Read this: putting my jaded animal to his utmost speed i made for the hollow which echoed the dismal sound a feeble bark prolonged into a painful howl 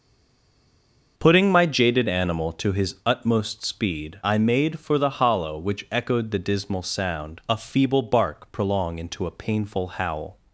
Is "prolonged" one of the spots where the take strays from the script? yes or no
yes